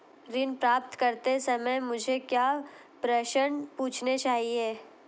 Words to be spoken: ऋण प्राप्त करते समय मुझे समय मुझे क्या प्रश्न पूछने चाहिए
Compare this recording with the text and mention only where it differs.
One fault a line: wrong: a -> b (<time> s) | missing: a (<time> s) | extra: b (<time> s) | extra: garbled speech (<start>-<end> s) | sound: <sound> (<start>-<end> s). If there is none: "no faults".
missing: समय मुझे (2.2 s)